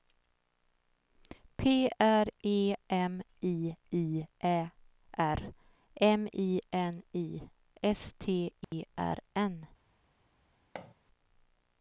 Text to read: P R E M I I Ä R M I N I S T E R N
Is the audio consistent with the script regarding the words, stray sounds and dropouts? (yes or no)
no